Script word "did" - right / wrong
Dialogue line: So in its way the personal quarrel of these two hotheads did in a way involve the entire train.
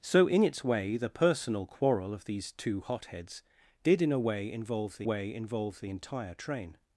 right